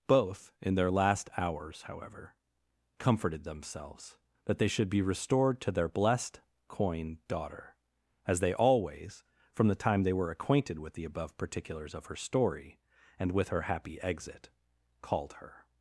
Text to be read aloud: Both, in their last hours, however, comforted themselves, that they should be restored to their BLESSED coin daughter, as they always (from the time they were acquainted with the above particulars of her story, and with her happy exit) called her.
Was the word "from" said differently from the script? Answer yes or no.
no